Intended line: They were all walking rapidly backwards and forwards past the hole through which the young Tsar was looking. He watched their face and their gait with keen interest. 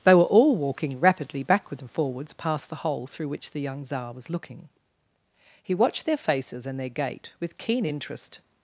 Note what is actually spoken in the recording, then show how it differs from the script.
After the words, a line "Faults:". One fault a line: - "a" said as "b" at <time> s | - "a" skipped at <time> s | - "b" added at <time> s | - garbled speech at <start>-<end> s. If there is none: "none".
They were all walking rapidly backwards and forwards past the hole through which the young Tsar was looking. He watched their faces and their gait with keen interest.
Faults:
- "face" said as "faces" at 6.2 s